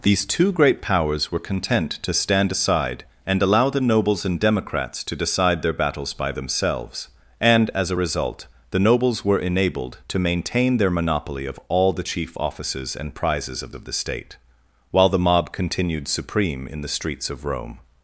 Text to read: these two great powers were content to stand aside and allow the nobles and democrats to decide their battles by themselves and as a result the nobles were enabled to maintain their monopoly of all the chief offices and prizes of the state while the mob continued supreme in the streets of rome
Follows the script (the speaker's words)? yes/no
no